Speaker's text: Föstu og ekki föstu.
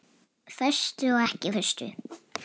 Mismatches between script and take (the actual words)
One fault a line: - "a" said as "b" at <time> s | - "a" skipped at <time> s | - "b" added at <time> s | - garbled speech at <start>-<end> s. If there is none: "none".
none